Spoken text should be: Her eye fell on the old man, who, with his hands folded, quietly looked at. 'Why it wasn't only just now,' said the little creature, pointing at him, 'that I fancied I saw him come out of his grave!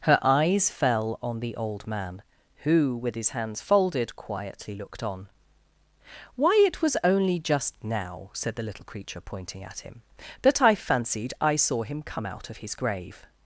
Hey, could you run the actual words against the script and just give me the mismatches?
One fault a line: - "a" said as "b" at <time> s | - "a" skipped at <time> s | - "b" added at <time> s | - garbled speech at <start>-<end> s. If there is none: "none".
- "eye" said as "eyes" at 0.2 s
- "at" said as "on" at 5.0 s
- "wasn't" said as "was" at 6.8 s